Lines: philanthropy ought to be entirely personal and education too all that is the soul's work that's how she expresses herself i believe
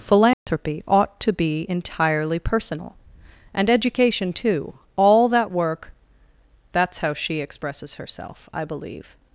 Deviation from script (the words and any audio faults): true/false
true